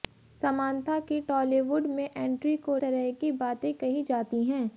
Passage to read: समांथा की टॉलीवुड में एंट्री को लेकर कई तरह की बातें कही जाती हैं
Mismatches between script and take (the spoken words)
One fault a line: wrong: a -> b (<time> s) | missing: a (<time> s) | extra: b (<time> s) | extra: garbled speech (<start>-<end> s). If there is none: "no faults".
missing: लेकर कई (2.8 s)